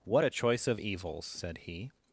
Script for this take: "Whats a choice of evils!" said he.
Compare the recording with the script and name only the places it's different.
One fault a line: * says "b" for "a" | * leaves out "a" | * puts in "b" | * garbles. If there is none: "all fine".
* says "What" for "Whats"